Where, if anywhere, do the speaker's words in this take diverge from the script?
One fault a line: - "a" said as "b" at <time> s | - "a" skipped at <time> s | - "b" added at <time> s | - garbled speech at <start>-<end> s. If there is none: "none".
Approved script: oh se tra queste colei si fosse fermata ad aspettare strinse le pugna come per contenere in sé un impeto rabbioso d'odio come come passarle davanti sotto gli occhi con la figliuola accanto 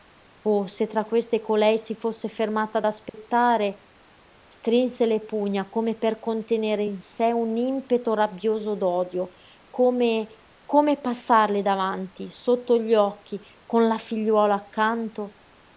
none